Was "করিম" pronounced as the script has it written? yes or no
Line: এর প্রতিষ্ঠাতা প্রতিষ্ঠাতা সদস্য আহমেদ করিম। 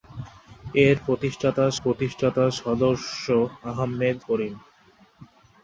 yes